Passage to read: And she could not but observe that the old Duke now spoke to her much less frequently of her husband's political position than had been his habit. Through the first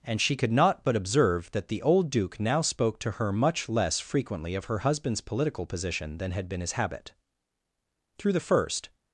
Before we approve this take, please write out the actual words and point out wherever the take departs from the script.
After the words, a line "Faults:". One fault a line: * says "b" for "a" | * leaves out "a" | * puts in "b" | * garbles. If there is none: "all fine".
And she could not but observe that the old Duke now spoke to her much less frequently of her husband's political position than had been his habit. Through the first
Faults:
all fine